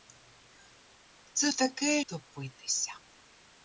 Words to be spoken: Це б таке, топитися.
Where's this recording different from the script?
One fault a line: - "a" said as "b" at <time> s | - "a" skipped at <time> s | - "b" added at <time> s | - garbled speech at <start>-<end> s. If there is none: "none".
none